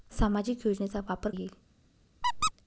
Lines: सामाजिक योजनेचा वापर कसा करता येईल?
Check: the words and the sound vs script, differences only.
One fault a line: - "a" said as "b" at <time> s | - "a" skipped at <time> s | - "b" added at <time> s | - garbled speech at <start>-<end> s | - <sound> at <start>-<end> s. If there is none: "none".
- "कसा करता" skipped at 1.3 s
- squeak at 2.2-2.5 s